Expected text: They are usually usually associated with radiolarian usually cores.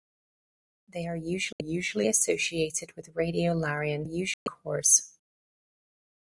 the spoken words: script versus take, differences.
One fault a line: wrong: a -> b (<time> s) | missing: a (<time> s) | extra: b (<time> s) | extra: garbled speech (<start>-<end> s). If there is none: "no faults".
no faults